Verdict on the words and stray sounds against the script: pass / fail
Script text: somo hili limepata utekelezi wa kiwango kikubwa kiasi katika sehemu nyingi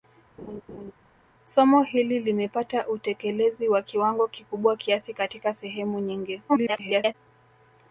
fail